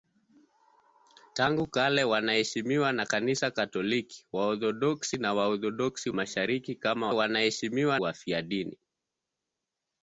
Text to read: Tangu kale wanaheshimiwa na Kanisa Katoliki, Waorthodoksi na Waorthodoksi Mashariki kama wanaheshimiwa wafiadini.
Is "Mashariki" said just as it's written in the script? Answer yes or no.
yes